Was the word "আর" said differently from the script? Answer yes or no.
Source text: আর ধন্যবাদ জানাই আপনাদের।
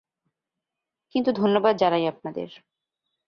yes